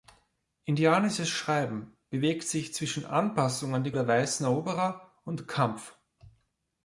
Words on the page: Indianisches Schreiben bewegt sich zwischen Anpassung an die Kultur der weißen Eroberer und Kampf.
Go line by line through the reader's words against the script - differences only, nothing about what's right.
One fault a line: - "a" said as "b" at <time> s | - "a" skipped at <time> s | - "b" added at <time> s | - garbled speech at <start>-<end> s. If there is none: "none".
- "Kultur" skipped at 3.9 s